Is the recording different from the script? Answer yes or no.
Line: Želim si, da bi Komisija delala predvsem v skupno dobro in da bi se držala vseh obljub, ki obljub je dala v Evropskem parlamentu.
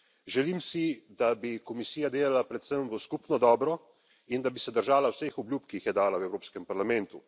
yes